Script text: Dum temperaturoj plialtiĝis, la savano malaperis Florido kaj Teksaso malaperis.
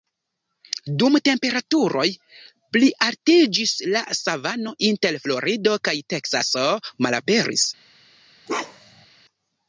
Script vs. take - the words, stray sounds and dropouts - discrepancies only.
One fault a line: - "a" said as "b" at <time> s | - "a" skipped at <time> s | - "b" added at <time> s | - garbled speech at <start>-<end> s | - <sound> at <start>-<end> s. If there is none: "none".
- "malaperis" said as "inter" at 4.9 s
- bark at 8.5-9.1 s